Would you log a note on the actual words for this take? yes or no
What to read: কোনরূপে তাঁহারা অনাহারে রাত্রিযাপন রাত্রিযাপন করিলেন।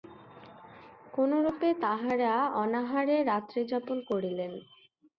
yes